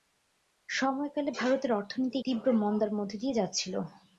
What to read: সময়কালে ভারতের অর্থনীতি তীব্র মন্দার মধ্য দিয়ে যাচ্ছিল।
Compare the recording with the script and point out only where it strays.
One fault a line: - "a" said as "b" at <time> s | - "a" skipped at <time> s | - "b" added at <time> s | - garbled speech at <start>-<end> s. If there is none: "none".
none